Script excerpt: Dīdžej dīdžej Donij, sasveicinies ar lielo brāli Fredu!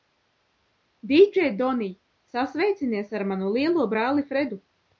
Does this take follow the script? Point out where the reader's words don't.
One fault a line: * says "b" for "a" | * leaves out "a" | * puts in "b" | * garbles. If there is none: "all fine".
* leaves out "dīdžej"
* puts in "manu"